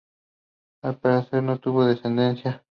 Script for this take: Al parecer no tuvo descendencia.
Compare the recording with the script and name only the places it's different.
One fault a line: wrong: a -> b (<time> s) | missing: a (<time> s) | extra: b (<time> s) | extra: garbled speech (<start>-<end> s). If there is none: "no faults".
no faults